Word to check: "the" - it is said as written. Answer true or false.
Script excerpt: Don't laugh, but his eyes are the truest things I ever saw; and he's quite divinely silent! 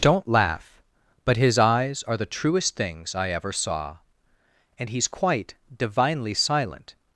true